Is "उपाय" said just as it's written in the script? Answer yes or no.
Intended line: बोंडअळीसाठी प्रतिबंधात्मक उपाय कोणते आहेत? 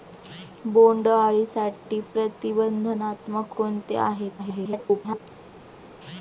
no